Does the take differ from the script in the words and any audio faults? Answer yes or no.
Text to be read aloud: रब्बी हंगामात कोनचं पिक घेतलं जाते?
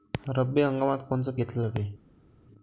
yes